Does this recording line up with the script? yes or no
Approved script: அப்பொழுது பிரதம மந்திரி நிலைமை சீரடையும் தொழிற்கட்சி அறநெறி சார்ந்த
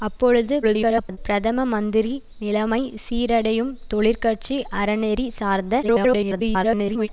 no